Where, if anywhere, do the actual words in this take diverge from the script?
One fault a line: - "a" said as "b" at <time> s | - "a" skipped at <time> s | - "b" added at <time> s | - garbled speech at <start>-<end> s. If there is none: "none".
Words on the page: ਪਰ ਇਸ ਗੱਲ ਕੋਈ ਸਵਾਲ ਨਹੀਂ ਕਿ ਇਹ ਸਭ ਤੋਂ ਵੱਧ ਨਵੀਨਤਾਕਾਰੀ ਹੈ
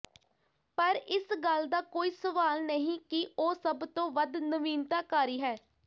- "ਦਾ" added at 1.7 s
- "ਇਹ" said as "ਉਹ" at 3.4 s